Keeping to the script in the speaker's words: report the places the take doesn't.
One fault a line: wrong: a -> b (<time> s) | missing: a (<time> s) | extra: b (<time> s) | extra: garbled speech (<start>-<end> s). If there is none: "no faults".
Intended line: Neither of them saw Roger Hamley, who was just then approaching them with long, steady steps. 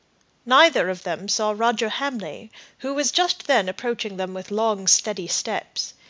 no faults